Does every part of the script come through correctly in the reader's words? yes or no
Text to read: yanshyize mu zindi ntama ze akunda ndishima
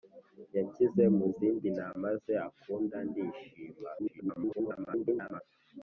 no